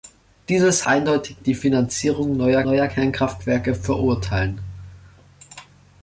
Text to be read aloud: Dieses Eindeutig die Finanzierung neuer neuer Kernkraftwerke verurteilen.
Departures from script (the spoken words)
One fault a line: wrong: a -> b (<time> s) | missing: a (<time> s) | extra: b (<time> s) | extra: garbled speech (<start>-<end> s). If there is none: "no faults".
no faults